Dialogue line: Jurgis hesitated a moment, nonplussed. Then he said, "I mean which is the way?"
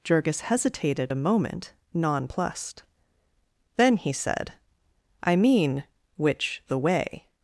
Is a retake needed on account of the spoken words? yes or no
yes